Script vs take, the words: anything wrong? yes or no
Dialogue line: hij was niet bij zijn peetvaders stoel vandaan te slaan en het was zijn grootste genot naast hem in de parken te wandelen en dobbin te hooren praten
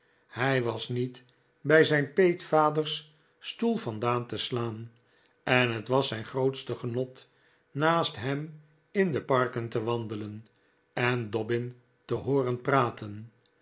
no